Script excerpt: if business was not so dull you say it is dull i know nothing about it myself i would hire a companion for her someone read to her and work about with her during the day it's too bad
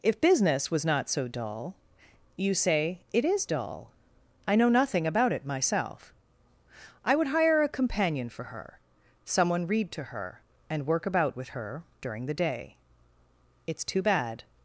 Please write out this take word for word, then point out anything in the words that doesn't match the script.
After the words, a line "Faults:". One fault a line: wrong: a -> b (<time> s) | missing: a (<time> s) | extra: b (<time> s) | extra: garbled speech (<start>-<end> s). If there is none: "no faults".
if business was not so dull you say it is dull i know nothing about it myself i would hire a companion for her someone read to her and work about with her during the day it's too bad
Faults:
no faults